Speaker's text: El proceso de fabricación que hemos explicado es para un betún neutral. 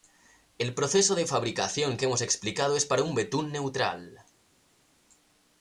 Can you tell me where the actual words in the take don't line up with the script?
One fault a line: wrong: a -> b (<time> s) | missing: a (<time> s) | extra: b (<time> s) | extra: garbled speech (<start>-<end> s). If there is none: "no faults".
no faults